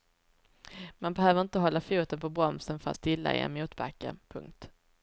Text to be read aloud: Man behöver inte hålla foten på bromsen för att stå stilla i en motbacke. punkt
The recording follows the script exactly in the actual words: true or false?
false